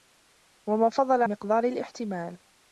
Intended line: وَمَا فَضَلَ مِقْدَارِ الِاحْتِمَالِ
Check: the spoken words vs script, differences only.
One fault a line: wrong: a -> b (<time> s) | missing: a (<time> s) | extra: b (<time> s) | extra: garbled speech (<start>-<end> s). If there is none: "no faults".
no faults